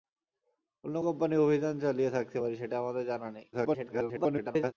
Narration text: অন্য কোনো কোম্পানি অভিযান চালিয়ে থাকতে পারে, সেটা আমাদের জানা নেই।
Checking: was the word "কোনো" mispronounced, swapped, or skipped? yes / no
yes